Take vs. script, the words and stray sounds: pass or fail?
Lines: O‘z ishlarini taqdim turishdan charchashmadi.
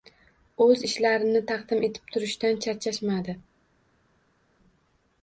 fail